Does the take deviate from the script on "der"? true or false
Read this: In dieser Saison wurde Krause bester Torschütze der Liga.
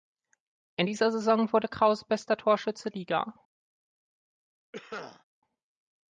true